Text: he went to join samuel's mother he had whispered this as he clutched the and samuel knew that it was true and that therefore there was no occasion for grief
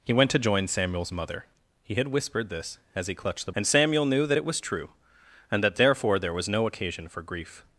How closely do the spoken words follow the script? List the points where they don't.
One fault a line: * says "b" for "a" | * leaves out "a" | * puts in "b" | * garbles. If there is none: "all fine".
all fine